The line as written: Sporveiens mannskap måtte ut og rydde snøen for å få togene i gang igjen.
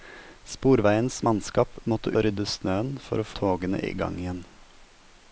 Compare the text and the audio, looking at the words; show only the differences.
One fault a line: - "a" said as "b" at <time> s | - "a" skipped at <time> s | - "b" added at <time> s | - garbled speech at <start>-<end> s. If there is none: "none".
- "ut" skipped at 2.1 s
- "få" skipped at 3.3 s